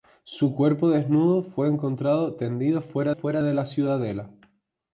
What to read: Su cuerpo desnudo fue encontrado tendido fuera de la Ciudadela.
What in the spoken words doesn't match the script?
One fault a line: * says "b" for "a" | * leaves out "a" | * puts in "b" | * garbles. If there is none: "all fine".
* puts in "fuera"